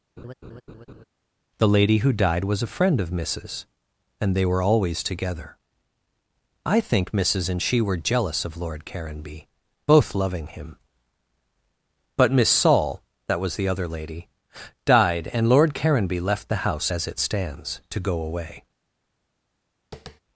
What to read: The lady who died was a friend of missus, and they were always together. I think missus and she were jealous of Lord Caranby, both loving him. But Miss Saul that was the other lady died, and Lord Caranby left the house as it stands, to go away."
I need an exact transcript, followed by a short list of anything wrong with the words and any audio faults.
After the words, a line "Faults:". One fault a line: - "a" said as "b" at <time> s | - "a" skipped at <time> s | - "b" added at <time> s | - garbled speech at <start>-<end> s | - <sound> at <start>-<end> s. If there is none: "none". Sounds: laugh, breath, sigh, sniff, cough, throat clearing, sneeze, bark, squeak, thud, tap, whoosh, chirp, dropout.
The lady who died was a friend of missus, and they were always together. I think missus and she were jealous of Lord Caranby, both loving him. But Miss Saul that was the other lady died, and Lord Caranby left the house as it stands, to go away."
Faults:
- laugh at 0.2-1.0 s
- tap at 19.9-20.2 s